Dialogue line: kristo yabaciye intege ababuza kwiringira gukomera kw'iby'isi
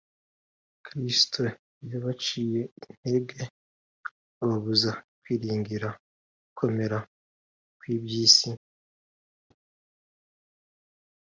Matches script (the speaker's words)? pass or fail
pass